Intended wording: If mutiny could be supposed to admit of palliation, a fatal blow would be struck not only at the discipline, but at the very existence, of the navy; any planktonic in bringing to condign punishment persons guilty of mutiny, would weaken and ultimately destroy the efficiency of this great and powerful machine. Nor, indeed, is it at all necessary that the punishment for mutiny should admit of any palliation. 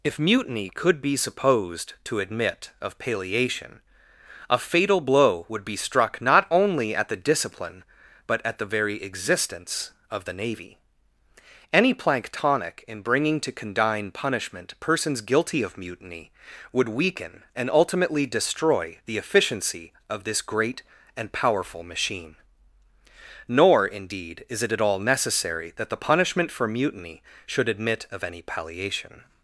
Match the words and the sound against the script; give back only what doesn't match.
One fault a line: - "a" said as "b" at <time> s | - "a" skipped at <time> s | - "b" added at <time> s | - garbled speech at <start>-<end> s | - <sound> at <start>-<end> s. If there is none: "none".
none